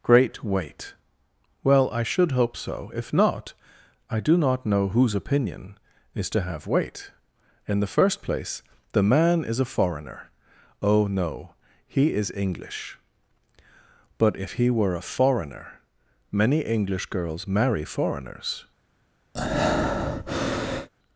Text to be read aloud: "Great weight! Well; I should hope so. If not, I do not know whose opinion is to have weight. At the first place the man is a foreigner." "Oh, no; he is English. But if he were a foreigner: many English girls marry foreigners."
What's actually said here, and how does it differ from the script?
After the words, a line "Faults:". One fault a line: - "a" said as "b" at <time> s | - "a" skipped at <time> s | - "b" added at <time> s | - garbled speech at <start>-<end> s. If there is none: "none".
"Great weight! Well; I should hope so. If not, I do not know whose opinion is to have weight. In the first place the man is a foreigner." "Oh, no; he is English. But if he were a foreigner: many English girls marry foreigners."
Faults:
- "At" said as "In" at 7.7 s